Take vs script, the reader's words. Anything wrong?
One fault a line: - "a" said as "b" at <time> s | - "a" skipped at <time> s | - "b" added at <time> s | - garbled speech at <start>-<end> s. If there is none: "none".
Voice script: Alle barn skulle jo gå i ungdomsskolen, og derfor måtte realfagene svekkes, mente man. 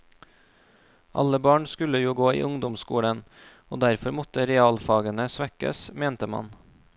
none